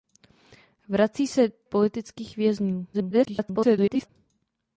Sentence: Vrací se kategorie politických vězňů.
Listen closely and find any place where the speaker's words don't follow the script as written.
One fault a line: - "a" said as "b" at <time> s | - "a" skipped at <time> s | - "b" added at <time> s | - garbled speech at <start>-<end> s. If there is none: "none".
- "kategorie" skipped at 1.5 s
- garbled speech at 2.9-4.1 s